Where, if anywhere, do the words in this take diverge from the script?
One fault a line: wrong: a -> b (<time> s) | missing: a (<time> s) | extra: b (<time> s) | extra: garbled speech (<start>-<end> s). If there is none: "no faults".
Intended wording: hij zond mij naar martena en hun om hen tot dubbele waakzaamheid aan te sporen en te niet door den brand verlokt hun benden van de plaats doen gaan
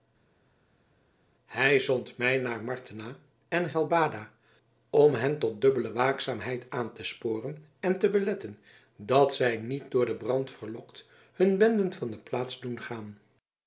wrong: hun -> helbada (3.7 s)
extra: beletten dat zij (8.1 s)